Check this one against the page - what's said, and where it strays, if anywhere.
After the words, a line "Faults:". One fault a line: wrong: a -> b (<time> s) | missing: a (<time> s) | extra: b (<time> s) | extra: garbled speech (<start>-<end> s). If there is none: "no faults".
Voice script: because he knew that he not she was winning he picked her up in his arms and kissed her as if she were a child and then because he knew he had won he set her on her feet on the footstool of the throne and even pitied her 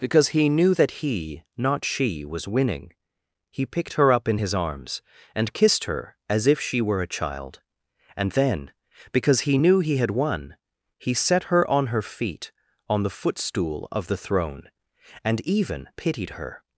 because he knew that he not she was winning he picked her up in his arms and kissed her as if she were a child and then because he knew he had won he set her on her feet on the footstool of the throne and even pitied her
Faults:
no faults